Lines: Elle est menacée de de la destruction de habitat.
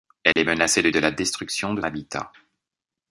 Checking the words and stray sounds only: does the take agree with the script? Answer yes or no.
no